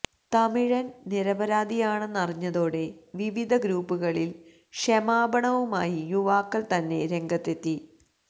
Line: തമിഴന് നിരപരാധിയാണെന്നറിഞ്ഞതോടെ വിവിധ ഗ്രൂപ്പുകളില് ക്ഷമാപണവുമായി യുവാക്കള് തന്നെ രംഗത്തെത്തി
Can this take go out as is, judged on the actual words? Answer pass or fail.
pass